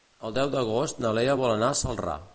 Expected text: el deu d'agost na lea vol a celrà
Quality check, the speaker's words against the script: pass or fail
fail